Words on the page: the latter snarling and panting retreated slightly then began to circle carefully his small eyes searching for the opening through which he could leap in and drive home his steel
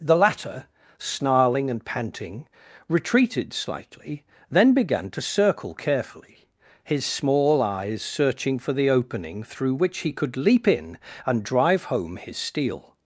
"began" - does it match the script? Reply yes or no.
yes